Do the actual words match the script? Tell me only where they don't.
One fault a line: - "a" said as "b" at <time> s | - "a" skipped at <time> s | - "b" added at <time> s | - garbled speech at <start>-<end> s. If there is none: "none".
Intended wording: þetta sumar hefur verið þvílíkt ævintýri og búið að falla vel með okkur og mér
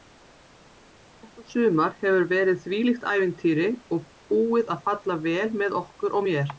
none